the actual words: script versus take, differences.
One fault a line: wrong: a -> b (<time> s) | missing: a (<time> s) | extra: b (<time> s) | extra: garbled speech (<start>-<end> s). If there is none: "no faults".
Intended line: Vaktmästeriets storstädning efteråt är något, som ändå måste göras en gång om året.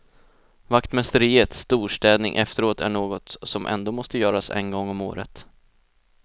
no faults